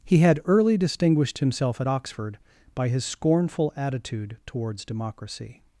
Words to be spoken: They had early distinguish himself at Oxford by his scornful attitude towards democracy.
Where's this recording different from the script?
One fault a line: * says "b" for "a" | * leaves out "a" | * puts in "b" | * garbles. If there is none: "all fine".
* says "He" for "They"
* says "distinguished" for "distinguish"